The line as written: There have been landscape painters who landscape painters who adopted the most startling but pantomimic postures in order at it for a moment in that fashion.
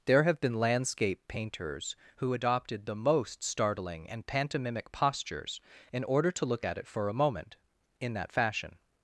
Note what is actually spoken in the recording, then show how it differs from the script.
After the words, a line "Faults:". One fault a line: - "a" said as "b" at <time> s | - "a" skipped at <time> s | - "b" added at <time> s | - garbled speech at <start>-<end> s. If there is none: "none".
There have been landscape painters who adopted the most startling and pantomimic postures in order to look at it for a moment in that fashion.
Faults:
- "landscape painters who" skipped at 2.3 s
- "but" said as "and" at 4.1 s
- "to look" added at 6.3 s